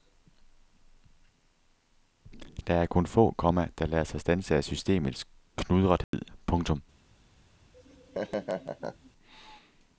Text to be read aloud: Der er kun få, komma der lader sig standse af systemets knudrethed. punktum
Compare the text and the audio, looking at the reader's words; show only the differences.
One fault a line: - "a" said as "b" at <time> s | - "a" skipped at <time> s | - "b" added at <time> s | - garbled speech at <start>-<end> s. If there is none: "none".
none